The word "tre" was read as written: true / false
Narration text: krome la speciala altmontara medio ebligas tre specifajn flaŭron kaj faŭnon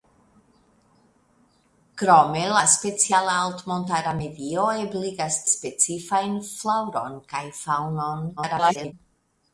false